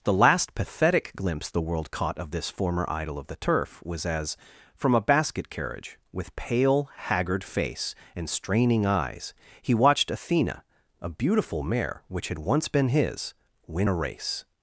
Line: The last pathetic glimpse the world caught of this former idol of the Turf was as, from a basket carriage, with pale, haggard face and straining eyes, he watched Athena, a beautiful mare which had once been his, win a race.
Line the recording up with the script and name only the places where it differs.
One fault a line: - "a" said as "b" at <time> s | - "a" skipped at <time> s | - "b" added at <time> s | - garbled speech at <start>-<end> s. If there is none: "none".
none